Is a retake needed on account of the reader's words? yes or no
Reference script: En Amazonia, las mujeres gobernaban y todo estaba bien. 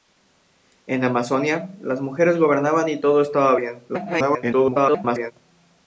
yes